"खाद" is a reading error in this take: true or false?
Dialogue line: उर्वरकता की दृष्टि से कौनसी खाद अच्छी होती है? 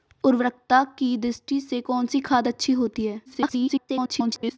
false